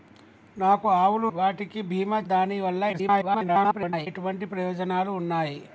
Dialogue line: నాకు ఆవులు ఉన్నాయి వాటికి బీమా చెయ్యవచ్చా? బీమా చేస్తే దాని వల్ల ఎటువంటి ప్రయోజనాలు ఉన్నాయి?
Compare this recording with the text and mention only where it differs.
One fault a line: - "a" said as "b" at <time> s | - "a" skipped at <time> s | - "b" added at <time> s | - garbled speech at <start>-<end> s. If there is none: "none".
- "ఉన్నాయి" skipped at 1.3 s
- "చెయ్యవచ్చా బీమా చేస్తే" skipped at 2.2 s
- garbled speech at 2.9-4.1 s